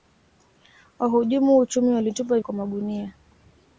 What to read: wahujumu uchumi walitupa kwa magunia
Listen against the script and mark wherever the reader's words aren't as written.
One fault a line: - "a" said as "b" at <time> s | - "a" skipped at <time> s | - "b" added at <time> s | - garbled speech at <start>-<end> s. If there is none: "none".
none